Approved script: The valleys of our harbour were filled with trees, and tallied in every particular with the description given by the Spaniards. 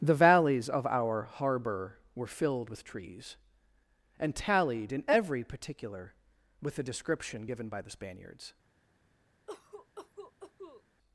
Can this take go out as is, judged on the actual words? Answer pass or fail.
pass